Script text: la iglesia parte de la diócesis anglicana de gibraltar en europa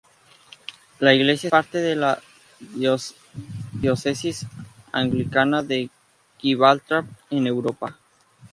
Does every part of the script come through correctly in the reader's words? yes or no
yes